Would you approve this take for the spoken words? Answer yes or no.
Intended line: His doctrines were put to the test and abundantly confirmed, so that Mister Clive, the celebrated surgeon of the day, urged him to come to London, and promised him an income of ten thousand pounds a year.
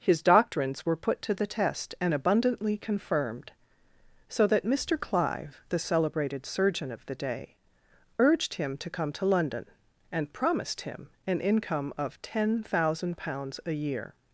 yes